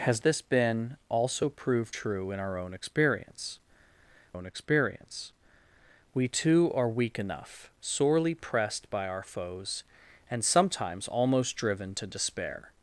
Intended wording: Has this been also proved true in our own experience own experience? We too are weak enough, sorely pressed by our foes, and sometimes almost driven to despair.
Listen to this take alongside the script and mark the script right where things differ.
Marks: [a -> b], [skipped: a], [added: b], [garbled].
Has this been also proved true in our own experience own experience? We too are weak enough, sorely pressed by our foes, and sometimes almost driven to despair.